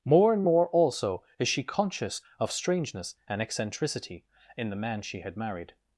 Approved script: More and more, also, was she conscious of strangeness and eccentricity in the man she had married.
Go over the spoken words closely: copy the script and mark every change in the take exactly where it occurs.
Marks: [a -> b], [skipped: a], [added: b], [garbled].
More and more, also, [was -> is] she conscious of strangeness and eccentricity in the man she had married.